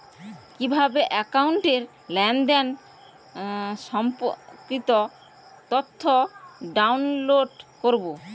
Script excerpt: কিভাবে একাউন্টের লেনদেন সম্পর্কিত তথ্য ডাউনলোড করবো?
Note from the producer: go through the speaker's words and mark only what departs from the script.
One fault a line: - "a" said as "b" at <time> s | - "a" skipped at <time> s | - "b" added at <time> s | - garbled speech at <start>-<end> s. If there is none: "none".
none